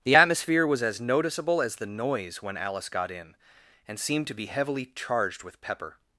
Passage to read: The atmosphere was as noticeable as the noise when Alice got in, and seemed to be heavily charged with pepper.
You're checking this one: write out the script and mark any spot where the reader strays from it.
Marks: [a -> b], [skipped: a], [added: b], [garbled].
The atmosphere was as noticeable as the noise when Alice got in, and seemed to be heavily charged with pepper.